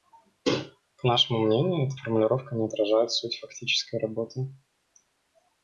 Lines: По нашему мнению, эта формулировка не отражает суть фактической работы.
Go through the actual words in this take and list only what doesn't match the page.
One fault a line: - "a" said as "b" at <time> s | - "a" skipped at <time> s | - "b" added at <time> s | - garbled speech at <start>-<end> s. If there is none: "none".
none